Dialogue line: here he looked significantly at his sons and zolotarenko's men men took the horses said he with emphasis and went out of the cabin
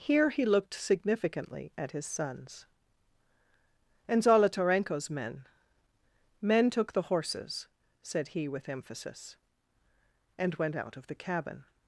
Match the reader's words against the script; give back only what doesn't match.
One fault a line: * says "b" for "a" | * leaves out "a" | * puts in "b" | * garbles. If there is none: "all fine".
all fine